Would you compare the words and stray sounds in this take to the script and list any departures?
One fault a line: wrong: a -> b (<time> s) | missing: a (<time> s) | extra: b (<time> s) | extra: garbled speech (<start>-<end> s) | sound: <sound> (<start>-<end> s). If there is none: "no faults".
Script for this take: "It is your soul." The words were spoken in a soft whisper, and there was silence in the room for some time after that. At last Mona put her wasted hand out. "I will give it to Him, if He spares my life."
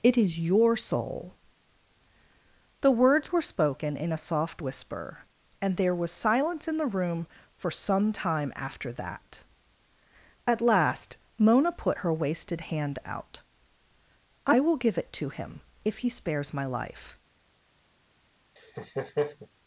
sound: laugh (18.6-19.5 s)